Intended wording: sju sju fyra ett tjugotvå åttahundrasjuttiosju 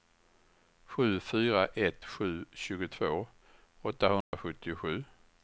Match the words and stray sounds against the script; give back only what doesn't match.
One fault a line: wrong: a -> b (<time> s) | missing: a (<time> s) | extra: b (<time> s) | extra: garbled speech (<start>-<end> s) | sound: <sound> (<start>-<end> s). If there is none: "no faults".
missing: sju (1.2 s)
extra: sju (2.0 s)
sound: dropout (4.2-4.3 s)